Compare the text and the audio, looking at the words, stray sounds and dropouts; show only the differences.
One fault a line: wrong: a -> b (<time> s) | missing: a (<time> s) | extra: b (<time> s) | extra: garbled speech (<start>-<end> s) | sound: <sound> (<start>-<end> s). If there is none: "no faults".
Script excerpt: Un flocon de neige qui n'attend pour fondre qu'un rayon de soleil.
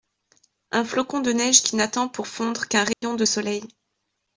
sound: dropout (2.9-3.0 s)